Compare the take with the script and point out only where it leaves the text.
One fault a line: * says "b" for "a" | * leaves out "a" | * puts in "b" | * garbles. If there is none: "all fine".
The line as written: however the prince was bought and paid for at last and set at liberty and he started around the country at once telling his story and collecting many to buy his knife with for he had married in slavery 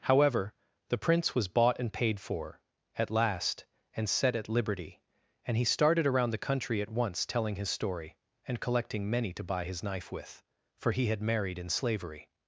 all fine